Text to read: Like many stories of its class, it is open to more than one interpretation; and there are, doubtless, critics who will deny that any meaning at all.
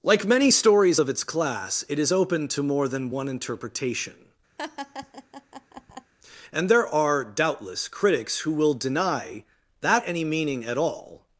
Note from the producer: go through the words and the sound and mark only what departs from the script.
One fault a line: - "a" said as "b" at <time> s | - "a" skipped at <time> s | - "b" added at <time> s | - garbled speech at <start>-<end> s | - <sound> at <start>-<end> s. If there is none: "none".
- laugh at 4.6-6.1 s